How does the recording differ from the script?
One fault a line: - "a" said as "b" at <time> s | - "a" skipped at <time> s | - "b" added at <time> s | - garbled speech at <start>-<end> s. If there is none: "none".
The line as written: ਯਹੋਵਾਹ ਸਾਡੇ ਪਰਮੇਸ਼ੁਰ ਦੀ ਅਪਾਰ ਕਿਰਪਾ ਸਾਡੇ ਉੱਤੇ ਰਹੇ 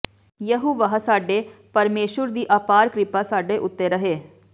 none